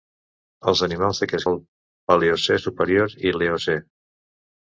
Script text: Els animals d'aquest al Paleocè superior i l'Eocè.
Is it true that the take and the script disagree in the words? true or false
false